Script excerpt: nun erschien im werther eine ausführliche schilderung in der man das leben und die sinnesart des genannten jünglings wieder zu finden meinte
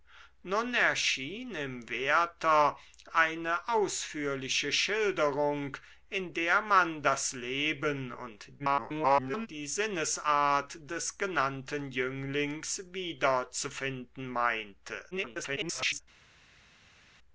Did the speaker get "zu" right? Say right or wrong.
right